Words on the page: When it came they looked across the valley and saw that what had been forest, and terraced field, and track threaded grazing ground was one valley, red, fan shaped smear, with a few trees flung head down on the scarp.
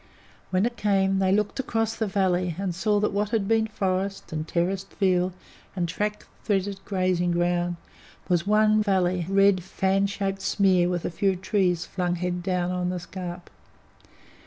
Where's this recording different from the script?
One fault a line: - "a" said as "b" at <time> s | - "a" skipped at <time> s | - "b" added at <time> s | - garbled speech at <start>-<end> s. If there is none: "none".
none